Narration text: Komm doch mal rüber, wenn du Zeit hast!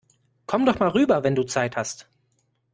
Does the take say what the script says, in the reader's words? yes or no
yes